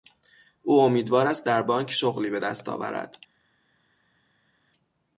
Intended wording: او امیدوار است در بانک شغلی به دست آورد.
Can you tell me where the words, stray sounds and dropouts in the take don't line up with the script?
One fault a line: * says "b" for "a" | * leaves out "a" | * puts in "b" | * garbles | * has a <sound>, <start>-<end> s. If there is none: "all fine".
all fine